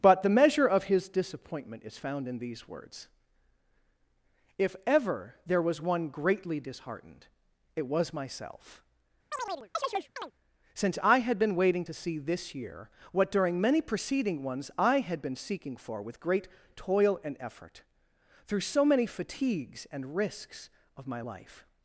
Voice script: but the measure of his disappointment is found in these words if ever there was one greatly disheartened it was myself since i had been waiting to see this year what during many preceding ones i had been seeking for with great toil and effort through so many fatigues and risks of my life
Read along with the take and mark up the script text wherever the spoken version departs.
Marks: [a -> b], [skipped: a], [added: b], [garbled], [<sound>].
but the measure of his disappointment is found in these words if ever there was one greatly disheartened it was myself [chirp] since i had been waiting to see this year what during many preceding ones i had been seeking for with great toil and effort through so many fatigues and risks of my life